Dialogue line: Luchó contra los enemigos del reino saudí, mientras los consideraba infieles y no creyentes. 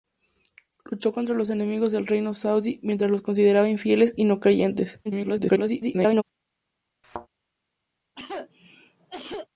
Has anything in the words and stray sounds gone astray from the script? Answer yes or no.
yes